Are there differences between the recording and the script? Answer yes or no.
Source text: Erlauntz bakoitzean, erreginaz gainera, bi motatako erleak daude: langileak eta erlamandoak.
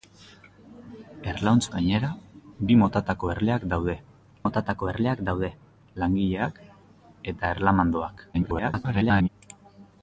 yes